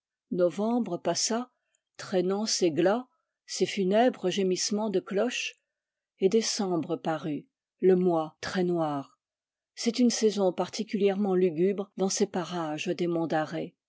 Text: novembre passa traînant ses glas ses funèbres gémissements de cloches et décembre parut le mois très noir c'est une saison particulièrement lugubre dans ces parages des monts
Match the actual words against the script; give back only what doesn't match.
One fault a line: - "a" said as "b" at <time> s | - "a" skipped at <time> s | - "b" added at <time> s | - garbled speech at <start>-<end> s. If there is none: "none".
none